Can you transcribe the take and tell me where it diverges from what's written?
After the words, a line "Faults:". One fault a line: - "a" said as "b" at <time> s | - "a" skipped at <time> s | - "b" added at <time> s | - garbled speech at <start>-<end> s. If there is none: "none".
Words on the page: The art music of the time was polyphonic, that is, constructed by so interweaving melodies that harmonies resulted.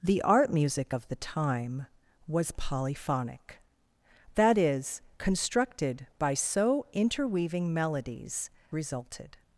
The art music of the time was polyphonic, that is, constructed by so interweaving melodies resulted.
Faults:
- "that harmonies" skipped at 8.5 s